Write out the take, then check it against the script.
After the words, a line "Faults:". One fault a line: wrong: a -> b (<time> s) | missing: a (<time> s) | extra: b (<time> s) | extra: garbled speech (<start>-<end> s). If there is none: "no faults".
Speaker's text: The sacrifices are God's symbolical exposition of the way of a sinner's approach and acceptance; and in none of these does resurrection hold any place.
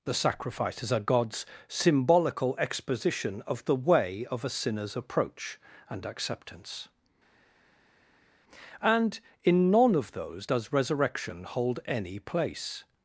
The sacrifices are God's symbolical exposition of the way of a sinner's approach and acceptance; and in none of those does resurrection hold any place.
Faults:
wrong: these -> those (10.1 s)